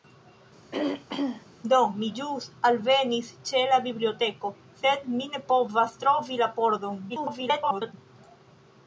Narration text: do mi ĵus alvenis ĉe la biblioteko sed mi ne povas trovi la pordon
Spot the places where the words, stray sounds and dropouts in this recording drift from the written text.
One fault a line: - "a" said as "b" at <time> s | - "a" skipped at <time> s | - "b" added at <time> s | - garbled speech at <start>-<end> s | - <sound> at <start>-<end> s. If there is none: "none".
- throat clearing at 0.7-1.5 s
- garbled speech at 7.1-7.9 s